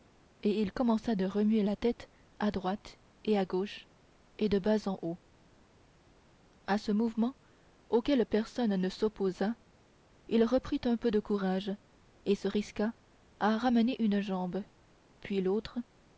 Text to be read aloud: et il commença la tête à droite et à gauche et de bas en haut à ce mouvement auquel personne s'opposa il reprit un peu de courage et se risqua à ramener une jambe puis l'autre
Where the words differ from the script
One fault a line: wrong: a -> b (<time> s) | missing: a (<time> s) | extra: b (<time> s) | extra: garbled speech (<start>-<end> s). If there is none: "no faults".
extra: de remuer (1.1 s)
extra: ne (8.8 s)